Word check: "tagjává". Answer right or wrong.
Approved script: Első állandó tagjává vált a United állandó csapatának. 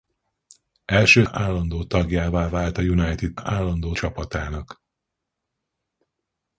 right